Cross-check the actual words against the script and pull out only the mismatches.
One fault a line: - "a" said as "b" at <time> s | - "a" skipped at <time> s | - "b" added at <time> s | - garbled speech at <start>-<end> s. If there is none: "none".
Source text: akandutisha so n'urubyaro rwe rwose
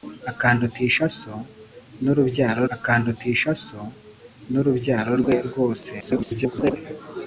- "akandutisha so n'urubyaro" added at 2.8 s
- garbled speech at 6.0-6.8 s